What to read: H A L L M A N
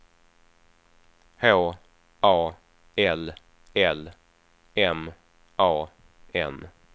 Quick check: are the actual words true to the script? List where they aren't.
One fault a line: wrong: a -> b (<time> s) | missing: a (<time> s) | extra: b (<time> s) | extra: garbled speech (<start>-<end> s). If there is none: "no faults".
no faults